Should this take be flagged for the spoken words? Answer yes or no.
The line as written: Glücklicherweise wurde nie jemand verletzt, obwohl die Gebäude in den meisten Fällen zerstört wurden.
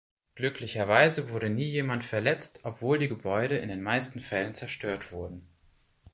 no